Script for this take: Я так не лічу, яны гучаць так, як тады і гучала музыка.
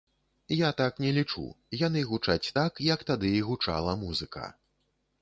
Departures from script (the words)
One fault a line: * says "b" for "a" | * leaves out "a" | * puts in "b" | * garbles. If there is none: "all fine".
all fine